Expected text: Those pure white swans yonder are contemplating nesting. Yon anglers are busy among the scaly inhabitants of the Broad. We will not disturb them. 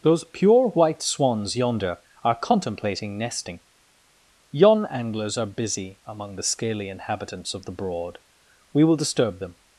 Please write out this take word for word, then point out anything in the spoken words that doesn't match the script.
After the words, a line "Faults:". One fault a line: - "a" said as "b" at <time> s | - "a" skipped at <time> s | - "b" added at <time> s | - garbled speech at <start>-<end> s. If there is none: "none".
Those pure white swans yonder are contemplating nesting. Yon anglers are busy among the scaly inhabitants of the Broad. We will disturb them.
Faults:
- "not" skipped at 9.0 s